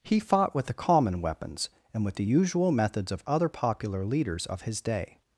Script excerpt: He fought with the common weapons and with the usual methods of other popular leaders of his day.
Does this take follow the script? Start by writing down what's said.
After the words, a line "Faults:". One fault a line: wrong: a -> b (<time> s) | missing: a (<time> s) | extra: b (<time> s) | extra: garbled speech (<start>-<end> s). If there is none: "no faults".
He fought with the common weapons and with the usual methods of other popular leaders of his day.
Faults:
no faults